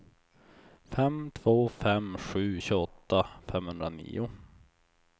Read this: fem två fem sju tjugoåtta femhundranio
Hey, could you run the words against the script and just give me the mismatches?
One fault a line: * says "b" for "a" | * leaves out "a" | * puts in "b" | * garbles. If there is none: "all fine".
all fine